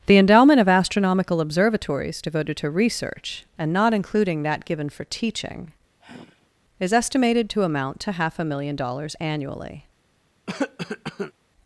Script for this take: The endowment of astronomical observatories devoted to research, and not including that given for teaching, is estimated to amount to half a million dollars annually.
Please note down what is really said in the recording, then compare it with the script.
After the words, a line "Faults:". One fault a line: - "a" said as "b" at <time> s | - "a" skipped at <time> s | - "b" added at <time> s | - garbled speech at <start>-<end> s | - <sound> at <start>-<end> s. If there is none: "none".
The endowment of astronomical observatories devoted to research, and not including that given for teaching, is estimated to amount to half a million dollars annually.
Faults:
- sigh at 6.0-6.5 s
- cough at 10.5-11.3 s